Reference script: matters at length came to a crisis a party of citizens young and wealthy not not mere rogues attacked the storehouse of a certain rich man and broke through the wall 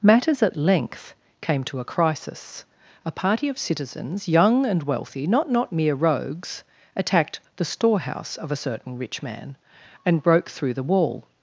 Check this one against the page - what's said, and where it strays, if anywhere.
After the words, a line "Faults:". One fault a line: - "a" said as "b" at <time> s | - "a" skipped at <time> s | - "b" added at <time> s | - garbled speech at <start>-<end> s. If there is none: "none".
matters at length came to a crisis a party of citizens young and wealthy not not mere rogues attacked the storehouse of a certain rich man and broke through the wall
Faults:
none